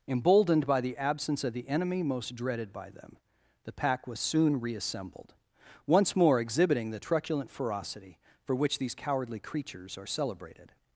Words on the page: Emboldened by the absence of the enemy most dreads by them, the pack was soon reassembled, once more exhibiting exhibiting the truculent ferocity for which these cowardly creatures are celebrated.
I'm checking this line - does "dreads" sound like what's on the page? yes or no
no